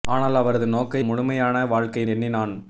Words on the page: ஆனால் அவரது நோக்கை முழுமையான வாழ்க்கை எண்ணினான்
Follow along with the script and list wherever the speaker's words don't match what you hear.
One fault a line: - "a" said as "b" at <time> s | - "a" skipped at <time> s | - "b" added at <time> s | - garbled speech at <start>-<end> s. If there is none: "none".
none